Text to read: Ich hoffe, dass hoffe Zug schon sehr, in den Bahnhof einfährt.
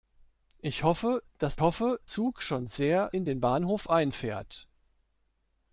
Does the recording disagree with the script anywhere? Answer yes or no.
no